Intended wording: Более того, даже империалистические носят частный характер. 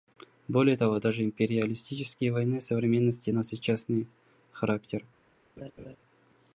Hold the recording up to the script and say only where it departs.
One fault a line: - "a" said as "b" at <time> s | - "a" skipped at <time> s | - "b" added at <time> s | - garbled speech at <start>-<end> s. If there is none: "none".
- "войны современности" added at 2.3 s